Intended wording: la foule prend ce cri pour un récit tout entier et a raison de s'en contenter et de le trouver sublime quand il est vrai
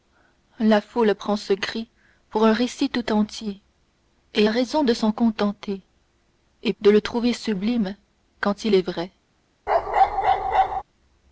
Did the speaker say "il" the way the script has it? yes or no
yes